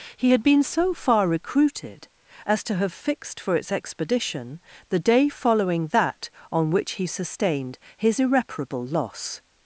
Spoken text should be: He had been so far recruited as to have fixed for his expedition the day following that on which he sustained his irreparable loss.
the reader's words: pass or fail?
fail